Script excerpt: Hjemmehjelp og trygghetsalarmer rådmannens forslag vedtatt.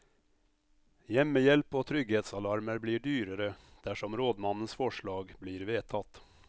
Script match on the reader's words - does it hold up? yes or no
no